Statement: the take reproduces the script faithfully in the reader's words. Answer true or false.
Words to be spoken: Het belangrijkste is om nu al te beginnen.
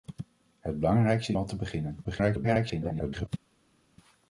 false